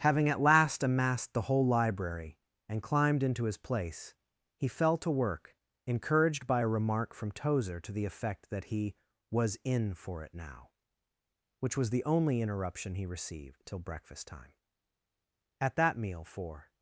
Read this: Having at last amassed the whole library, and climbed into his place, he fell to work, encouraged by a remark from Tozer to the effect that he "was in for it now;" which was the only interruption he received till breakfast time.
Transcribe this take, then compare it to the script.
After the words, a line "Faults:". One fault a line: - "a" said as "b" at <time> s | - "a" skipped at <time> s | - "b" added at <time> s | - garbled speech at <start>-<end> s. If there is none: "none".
Having at last amassed the whole library, and climbed into his place, he fell to work, encouraged by a remark from Tozer to the effect that he "was in for it now;" which was the only interruption he received till breakfast time. At that meal, for
Faults:
- "At that meal for" added at 15.6 s